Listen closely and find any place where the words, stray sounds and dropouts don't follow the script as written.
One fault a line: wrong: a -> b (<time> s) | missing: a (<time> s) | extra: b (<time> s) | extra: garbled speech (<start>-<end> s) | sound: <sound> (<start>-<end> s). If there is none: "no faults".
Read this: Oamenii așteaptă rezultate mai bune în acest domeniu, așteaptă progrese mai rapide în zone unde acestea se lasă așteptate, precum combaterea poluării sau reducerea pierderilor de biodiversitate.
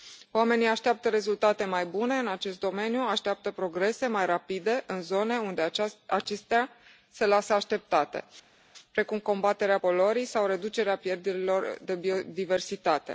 no faults